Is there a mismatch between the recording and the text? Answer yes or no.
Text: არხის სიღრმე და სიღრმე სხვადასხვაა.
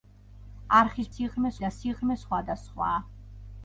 no